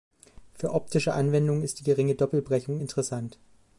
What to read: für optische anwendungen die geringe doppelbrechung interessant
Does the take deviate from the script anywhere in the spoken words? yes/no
yes